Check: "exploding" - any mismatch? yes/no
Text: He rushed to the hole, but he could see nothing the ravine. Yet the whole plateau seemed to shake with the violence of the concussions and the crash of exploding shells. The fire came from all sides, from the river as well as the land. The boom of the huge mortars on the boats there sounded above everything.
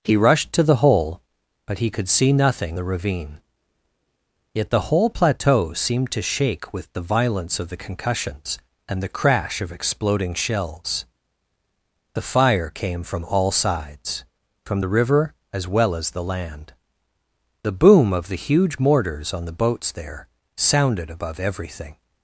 no